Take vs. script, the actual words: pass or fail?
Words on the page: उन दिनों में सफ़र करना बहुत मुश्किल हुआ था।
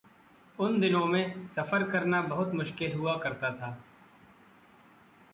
fail